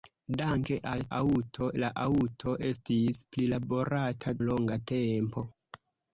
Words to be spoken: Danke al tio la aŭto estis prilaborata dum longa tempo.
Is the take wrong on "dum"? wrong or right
wrong